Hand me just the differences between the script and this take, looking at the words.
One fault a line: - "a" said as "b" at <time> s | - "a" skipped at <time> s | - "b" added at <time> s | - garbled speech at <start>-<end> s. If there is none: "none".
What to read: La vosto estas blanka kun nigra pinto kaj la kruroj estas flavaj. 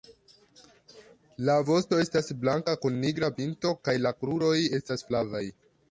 none